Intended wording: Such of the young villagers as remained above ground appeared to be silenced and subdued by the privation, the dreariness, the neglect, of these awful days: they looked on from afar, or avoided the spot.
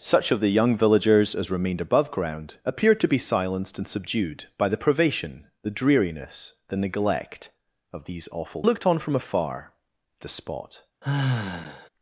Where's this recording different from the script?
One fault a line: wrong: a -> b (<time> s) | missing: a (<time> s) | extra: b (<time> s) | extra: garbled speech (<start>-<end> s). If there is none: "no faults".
missing: days they (8.6 s)
missing: or avoided (9.7 s)